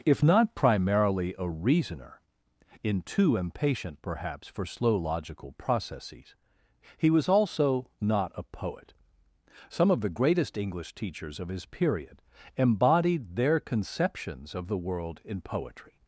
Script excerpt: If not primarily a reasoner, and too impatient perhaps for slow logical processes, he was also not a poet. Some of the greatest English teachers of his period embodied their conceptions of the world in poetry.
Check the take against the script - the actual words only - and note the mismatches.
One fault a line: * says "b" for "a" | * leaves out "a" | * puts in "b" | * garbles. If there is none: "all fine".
* says "in" for "and"